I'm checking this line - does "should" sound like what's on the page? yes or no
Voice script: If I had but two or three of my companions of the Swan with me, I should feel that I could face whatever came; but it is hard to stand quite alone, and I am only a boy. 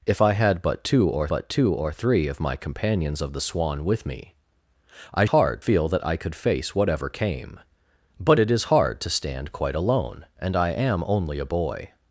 no